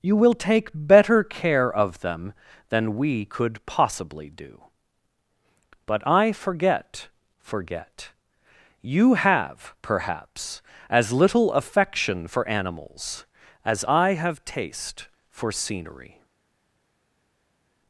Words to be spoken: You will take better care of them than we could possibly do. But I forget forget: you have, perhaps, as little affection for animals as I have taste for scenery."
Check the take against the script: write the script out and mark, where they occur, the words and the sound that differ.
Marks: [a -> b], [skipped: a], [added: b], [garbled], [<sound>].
You will take better care of them than we could possibly do. But I forget forget: you have, perhaps, as little affection for animals as I have taste for scenery."